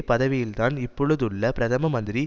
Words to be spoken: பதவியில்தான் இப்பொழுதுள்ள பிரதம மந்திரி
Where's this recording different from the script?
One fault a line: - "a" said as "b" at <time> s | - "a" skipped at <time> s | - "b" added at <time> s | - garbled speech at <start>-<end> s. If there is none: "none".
none